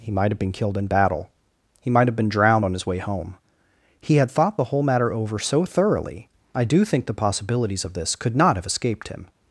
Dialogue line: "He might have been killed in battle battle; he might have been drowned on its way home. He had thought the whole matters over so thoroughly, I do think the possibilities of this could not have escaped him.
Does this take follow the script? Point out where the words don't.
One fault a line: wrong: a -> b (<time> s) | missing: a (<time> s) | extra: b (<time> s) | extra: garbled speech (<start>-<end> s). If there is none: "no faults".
missing: battle (1.3 s)
wrong: its -> his (2.7 s)
wrong: matters -> matter (4.8 s)